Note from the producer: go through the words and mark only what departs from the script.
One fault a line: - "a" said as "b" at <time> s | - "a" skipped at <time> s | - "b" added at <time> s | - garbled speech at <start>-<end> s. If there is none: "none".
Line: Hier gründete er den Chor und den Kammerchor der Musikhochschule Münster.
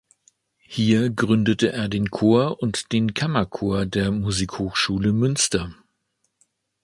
none